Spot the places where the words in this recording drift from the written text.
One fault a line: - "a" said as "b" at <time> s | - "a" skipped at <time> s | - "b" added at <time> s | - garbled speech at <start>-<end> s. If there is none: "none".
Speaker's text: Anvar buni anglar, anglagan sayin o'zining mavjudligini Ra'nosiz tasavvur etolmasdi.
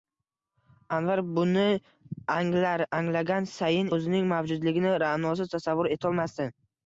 none